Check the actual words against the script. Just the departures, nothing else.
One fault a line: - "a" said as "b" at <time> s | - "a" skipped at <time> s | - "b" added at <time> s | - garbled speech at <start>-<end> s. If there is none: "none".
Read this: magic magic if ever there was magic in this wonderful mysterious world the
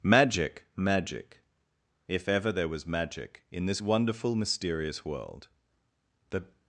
none